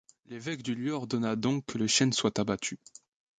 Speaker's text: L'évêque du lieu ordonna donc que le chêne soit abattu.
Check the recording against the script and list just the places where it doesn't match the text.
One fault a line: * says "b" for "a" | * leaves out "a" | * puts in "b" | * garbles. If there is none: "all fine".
all fine